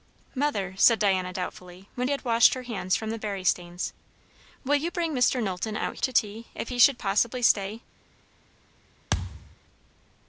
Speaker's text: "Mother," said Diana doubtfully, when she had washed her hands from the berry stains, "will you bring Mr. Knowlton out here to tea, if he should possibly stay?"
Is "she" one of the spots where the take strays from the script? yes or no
yes